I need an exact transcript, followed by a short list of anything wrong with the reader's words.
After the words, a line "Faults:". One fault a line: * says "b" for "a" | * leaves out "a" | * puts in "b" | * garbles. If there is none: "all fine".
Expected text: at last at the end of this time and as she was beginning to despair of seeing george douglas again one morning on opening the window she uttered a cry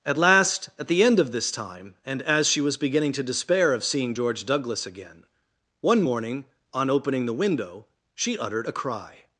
at last at the end of this time and as she was beginning to despair of seeing george douglas again one morning on opening the window she uttered a cry
Faults:
all fine